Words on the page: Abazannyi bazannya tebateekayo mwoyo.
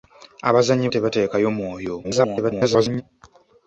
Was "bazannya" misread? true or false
true